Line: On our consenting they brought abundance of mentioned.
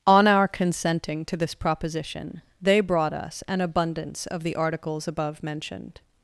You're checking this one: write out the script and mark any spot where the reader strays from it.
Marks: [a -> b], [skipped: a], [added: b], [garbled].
On our consenting [added: to this proposition] they brought [added: us an] abundance of [added: the articles above] mentioned.